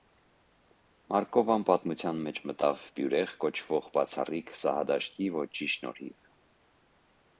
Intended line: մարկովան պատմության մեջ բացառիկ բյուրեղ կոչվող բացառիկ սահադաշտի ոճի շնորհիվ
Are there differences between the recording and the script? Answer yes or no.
yes